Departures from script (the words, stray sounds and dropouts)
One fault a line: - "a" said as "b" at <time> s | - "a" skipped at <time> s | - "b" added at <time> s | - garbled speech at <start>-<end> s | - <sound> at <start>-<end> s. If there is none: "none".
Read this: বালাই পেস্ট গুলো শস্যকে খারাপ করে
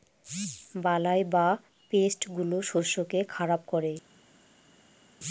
- "বা" added at 1.3 s